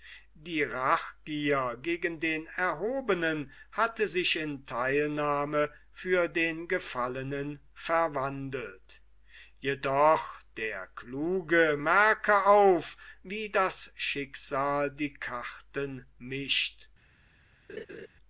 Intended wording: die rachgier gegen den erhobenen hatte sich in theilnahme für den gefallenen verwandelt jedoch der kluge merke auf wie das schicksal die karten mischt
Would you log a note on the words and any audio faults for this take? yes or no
yes